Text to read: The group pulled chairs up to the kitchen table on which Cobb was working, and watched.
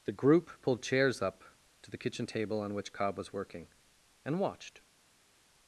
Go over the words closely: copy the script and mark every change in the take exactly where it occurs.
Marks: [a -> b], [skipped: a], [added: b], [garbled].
The group pulled chairs up to the kitchen table on which Cobb was working, and watched.